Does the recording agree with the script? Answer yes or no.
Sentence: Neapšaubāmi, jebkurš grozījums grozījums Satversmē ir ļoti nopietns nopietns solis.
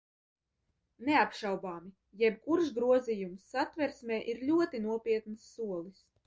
no